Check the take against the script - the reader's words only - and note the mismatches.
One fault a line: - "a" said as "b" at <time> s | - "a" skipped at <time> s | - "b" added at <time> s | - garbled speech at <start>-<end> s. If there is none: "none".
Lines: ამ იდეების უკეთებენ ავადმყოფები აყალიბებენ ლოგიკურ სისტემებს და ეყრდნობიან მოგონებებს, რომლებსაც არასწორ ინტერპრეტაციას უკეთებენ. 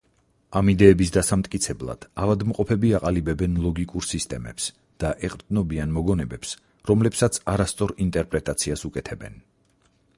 - "უკეთებენ" said as "დასამტკიცებლად" at 1.1 s